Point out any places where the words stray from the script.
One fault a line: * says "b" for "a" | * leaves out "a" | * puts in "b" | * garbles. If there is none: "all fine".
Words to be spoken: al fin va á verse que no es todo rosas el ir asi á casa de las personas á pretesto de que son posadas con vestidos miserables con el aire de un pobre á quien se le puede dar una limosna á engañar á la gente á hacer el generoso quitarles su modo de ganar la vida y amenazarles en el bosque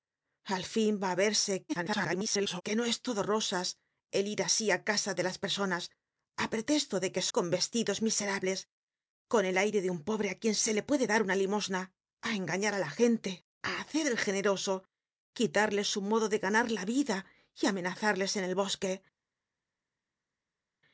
* garbles
* leaves out "son posadas"